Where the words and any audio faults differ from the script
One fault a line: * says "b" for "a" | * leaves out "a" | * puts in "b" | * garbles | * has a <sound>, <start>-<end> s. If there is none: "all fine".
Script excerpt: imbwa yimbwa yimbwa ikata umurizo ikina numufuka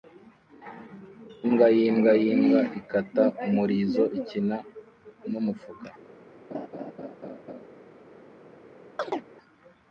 * has a laugh, 6.5-7.7 s
* has a chirp, 9.0-9.3 s